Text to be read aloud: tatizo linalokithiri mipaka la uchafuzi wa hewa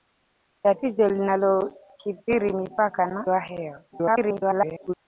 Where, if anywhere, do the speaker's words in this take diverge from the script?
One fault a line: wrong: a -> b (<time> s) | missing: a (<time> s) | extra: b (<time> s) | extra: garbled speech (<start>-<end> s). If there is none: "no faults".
missing: la uchafuzi (3.2 s)
extra: garbled speech (3.9-4.9 s)